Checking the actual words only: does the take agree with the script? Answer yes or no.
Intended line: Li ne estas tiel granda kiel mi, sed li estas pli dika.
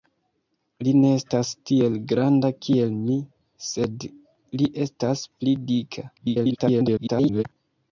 no